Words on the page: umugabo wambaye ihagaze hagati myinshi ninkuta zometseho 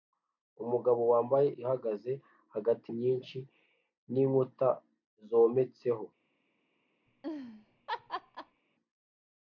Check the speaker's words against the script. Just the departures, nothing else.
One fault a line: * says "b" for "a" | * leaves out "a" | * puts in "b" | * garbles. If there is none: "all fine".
all fine